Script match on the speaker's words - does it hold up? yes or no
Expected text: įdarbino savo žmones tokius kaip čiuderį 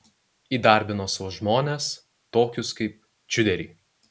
yes